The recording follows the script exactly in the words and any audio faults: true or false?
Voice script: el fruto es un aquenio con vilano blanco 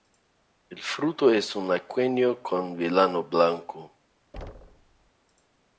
false